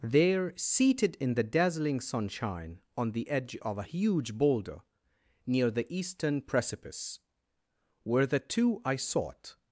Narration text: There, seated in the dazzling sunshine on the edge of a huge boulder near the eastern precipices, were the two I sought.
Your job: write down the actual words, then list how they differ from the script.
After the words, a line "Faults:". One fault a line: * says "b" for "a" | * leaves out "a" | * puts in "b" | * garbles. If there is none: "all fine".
There, seated in the dazzling sunshine on the edge of a huge boulder near the eastern precipice, were the two I sought.
Faults:
* says "precipice" for "precipices"